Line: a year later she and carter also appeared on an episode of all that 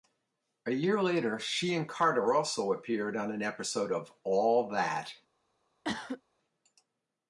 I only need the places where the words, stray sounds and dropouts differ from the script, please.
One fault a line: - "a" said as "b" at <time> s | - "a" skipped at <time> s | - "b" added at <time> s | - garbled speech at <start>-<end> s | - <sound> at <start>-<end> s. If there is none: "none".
- cough at 5.8-6.2 s